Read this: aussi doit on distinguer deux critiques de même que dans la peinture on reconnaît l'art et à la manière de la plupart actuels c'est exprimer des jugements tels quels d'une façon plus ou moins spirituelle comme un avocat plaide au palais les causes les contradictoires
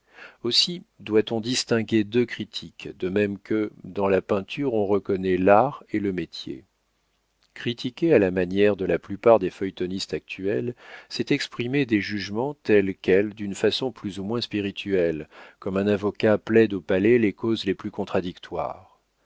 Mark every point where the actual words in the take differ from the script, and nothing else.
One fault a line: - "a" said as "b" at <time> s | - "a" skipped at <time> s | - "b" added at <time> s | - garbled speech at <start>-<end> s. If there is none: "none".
- "le métier critiquer" added at 6.0 s
- "des feuilletonistes" added at 9.4 s
- "plus" added at 17.7 s